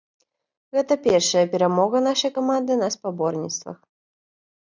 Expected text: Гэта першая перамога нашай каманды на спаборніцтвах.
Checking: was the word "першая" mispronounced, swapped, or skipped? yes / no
no